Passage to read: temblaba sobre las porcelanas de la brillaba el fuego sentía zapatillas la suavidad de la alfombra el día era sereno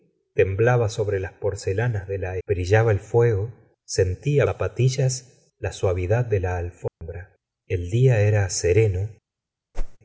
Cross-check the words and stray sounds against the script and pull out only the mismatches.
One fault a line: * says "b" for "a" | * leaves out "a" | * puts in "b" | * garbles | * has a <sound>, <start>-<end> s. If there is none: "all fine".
* has a dropout, 6.9-7.0 s
* has a whoosh, 9.7-10.0 s